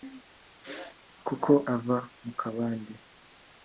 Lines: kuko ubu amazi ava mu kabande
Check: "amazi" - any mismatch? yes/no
yes